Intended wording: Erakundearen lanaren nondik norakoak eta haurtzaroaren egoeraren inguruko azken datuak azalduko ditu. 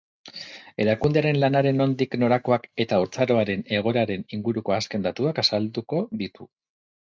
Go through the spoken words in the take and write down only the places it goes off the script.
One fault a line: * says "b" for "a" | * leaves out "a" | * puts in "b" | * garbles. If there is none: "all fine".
all fine